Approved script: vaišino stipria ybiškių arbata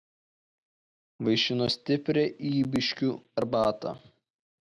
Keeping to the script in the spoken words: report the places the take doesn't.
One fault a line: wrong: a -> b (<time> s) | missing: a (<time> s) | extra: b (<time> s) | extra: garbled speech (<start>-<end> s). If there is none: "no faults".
no faults